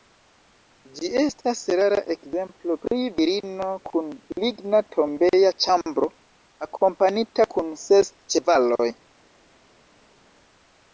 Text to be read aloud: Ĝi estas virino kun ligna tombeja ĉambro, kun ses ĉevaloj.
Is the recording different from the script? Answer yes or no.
yes